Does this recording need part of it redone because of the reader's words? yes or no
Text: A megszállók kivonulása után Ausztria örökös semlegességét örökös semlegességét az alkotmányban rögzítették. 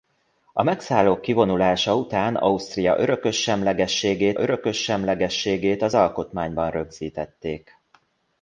no